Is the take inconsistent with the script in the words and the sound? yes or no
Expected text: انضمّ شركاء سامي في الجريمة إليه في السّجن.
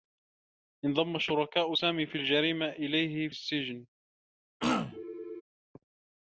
yes